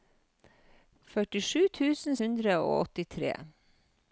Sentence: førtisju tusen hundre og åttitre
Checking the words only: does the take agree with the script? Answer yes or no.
yes